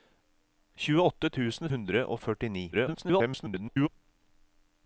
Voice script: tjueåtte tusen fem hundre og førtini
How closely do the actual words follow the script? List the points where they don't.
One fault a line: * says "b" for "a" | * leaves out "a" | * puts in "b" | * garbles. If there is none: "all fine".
* leaves out "fem"
* garbles